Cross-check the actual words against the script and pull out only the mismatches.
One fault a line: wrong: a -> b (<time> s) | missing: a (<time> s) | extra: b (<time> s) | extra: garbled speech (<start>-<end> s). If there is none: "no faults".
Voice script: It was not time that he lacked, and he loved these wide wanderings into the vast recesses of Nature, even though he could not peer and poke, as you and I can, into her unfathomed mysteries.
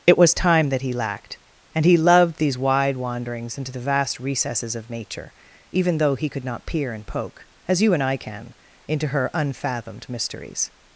missing: not (0.3 s)